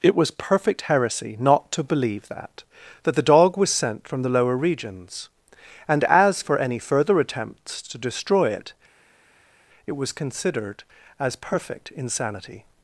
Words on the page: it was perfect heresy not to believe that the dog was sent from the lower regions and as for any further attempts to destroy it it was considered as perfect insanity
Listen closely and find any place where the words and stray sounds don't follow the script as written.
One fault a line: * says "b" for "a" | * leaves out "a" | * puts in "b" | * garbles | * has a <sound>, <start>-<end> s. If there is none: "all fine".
* puts in "that"